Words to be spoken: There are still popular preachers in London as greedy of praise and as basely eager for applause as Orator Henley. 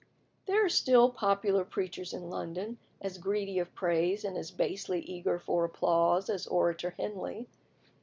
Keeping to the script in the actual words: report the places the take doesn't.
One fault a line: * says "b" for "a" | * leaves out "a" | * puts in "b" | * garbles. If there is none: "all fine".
all fine